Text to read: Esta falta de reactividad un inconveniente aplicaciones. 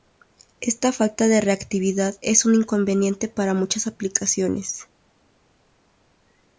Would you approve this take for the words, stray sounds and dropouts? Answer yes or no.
no